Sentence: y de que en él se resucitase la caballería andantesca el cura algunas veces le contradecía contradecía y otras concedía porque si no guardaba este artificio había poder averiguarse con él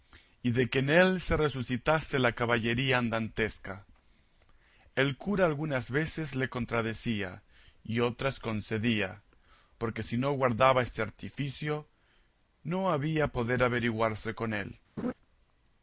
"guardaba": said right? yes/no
yes